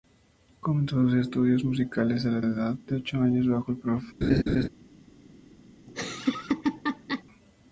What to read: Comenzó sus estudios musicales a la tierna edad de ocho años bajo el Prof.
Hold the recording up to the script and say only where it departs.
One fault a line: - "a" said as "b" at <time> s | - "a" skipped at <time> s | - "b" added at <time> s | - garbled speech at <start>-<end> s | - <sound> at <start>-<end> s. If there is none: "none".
- "tierna" skipped at 2.4 s
- laugh at 4.2-4.7 s
- laugh at 5.9-7.2 s